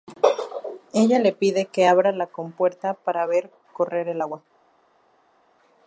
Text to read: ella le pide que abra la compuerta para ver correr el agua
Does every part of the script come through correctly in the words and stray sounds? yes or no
yes